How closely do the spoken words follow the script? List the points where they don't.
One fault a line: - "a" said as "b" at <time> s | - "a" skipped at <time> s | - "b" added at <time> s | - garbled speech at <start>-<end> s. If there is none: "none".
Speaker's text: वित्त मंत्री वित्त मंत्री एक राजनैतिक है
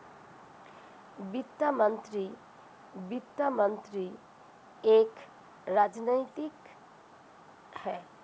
none